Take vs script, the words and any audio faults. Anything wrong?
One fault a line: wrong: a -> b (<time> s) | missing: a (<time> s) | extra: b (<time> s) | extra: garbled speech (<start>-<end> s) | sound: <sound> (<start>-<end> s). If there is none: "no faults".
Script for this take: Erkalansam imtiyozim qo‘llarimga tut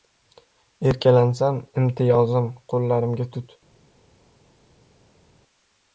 no faults